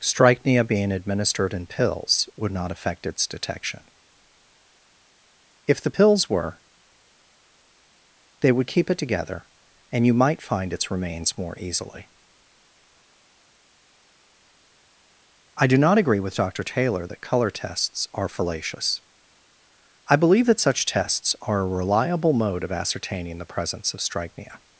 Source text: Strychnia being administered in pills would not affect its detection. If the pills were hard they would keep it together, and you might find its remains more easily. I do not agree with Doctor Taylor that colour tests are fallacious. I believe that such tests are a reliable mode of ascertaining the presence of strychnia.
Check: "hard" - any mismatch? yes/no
yes